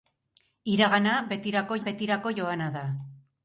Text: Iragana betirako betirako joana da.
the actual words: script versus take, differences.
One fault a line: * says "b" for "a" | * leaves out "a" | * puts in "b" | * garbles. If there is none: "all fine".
all fine